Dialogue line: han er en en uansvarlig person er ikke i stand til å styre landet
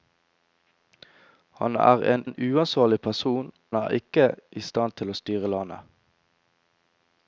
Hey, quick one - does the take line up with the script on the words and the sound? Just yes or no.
yes